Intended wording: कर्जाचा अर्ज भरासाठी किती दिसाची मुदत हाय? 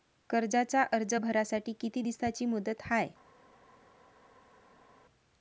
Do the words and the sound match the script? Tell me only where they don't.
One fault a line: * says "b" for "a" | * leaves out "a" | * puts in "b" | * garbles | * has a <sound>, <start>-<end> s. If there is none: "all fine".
all fine